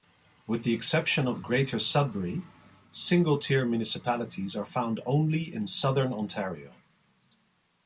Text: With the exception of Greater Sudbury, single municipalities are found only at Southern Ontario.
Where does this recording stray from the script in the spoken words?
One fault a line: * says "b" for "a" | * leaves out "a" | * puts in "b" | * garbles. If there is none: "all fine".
* puts in "tier"
* says "in" for "at"